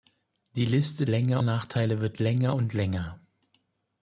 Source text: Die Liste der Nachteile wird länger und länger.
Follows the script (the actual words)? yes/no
no